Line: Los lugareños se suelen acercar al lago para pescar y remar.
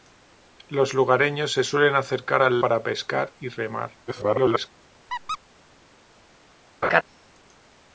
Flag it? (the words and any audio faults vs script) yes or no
yes